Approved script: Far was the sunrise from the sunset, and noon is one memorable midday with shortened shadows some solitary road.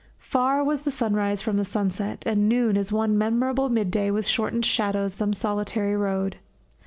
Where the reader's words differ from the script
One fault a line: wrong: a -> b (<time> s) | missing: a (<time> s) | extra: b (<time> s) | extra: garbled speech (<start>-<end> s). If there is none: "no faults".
no faults